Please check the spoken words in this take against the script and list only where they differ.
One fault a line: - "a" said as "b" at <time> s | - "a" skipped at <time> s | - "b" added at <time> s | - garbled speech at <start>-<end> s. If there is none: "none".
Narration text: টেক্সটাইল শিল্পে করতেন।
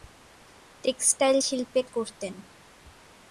none